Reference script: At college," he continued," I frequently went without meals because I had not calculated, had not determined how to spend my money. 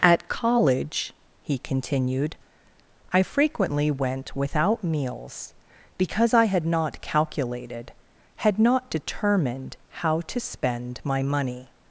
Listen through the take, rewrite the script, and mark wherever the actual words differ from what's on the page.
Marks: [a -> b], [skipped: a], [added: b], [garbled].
At college," he continued," I frequently went without meals because I had not calculated, had not determined how to spend my money.